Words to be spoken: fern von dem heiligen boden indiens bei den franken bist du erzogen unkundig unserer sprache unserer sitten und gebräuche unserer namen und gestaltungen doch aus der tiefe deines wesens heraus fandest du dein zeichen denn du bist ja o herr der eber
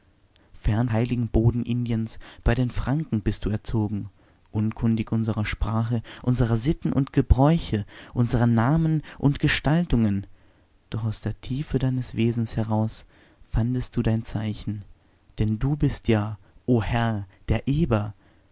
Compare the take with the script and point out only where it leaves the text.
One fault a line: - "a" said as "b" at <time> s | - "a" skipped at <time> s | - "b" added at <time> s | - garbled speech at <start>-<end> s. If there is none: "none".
- "von dem" skipped at 0.9 s